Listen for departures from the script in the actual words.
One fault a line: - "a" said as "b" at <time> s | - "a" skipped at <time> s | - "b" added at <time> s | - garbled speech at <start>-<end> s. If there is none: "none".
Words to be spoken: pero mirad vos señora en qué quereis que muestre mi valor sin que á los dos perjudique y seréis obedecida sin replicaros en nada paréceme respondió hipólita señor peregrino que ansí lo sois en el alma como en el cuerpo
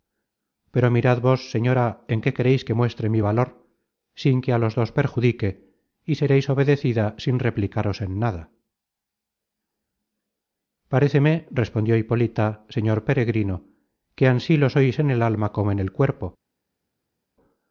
none